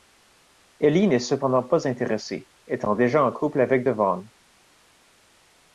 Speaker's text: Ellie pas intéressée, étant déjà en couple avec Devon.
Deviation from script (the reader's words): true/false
true